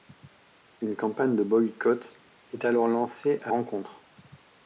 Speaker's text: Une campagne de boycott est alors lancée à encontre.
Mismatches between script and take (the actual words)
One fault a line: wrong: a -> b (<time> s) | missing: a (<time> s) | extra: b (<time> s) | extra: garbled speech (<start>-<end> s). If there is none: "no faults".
no faults